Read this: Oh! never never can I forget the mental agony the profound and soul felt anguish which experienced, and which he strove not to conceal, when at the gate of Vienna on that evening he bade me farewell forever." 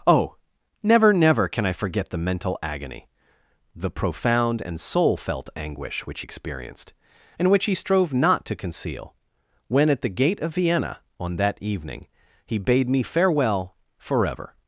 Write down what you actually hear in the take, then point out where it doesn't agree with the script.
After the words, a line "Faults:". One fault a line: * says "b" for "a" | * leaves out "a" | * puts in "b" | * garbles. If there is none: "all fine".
Oh! never never can I forget the mental agony the profound and soul felt anguish which experienced, and which he strove not to conceal, when at the gate of Vienna on that evening he bade me farewell forever."
Faults:
all fine